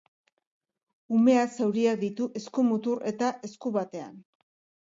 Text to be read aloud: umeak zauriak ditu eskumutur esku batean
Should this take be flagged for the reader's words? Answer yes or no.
yes